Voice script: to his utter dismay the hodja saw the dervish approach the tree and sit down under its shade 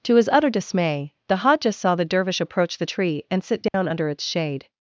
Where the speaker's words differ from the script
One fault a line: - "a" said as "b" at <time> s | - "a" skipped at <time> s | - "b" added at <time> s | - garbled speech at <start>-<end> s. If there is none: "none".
none